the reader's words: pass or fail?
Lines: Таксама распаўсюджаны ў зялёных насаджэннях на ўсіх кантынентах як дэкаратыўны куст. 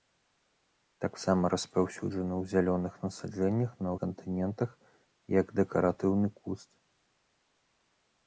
fail